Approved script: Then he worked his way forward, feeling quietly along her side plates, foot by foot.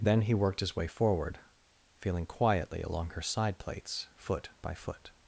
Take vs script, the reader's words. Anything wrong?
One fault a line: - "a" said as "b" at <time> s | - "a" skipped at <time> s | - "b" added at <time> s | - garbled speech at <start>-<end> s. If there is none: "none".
none